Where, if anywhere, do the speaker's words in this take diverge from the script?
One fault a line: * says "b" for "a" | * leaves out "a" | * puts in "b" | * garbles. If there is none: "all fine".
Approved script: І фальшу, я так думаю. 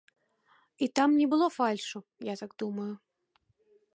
* puts in "там не было"